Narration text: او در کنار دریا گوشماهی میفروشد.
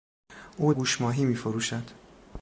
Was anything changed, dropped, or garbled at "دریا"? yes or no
yes